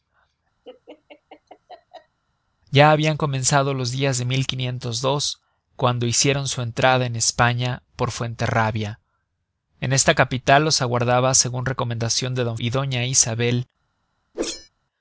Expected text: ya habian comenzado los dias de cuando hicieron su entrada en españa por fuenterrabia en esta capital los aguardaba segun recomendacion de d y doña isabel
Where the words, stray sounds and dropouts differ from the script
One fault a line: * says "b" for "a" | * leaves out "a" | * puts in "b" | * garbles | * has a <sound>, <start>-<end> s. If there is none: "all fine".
* has a laugh, 0.6-2.2 s
* has a whoosh, 14.3-14.7 s